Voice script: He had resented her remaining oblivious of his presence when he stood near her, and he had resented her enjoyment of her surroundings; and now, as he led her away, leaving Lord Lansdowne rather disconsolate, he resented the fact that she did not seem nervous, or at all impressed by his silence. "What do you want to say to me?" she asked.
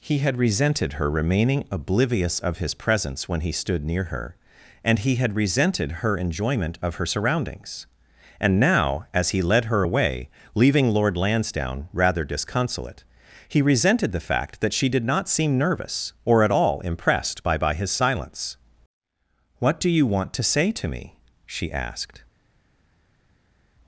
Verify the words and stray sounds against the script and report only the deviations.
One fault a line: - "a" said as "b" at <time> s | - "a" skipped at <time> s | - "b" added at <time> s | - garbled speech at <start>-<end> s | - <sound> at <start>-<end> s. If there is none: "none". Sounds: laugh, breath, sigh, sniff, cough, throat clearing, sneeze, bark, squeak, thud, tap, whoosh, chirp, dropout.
- "by" added at 17.6 s